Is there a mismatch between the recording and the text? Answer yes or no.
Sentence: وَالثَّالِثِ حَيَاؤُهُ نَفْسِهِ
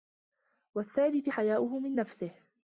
yes